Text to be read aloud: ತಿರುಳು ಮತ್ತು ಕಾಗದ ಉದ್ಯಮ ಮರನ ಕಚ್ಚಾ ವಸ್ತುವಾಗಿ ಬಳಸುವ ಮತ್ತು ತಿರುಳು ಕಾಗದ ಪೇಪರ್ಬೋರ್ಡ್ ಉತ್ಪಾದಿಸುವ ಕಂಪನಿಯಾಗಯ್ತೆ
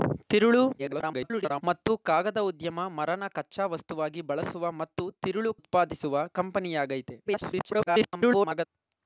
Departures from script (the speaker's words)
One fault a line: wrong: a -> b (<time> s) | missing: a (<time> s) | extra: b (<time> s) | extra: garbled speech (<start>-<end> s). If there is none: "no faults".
extra: garbled speech (0.8-1.6 s)
missing: ಕಾಗದ ಪೇಪರ್ಬೋರ್ಡ್ (5.5 s)
extra: garbled speech (7.2-8.7 s)